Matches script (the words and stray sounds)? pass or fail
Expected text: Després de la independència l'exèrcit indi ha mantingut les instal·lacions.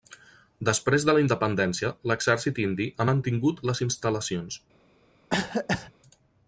fail